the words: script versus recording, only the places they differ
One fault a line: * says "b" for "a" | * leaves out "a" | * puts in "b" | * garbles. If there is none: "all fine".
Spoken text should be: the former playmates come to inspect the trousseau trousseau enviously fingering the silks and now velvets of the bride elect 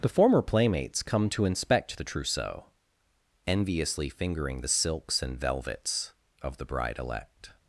* leaves out "trousseau"
* leaves out "now"